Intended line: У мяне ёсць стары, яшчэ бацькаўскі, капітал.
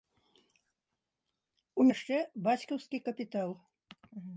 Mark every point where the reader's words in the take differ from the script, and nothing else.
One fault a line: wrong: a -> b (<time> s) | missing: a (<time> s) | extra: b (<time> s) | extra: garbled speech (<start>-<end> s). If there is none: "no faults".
missing: мяне ёсць стары (1.9 s)